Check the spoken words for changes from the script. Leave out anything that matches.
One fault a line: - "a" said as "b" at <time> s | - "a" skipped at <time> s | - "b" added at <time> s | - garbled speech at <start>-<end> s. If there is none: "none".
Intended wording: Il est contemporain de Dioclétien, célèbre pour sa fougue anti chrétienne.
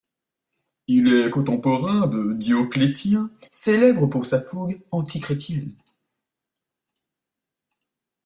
none